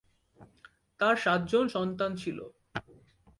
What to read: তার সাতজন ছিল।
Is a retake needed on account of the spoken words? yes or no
yes